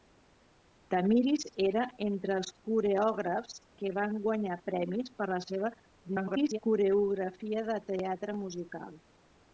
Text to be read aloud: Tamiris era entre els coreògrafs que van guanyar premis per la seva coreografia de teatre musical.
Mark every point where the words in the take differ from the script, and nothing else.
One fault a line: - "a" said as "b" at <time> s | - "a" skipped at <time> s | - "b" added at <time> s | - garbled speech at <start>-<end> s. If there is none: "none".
- garbled speech at 6.0-6.6 s